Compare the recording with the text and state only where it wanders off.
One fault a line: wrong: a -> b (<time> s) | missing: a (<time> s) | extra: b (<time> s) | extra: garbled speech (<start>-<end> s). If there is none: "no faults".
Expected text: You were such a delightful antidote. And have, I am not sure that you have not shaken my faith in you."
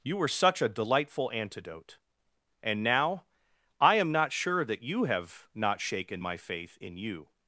wrong: have -> now (2.8 s)